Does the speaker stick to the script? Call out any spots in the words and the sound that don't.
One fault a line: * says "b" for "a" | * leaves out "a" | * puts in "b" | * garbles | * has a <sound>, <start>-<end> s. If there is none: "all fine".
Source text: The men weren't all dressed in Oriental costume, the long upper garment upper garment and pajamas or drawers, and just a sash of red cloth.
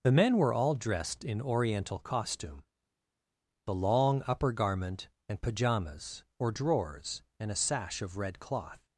* says "were" for "weren't"
* leaves out "upper garment"
* leaves out "just"